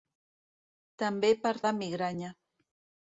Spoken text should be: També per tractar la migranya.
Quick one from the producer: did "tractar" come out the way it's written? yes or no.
no